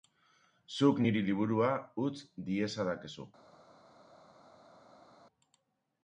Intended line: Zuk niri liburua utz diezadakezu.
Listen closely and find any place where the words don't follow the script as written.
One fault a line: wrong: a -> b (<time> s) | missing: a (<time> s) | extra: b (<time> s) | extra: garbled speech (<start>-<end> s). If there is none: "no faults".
no faults